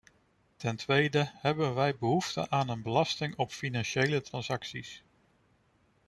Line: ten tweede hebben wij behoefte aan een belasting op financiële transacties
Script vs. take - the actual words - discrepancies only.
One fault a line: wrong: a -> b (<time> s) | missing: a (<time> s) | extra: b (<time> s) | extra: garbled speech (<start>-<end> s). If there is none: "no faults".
no faults